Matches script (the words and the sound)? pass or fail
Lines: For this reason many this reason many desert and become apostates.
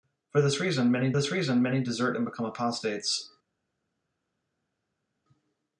pass